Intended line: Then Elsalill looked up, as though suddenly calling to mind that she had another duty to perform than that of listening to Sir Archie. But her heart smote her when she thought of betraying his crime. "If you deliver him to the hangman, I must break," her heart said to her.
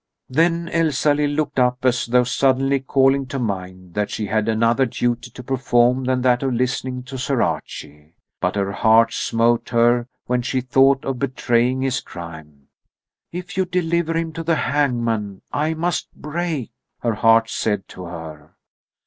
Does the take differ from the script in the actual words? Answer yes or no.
no